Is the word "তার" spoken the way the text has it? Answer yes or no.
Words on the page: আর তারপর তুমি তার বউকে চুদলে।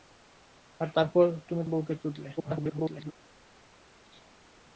no